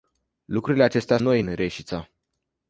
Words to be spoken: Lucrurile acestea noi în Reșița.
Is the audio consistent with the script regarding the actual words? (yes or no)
yes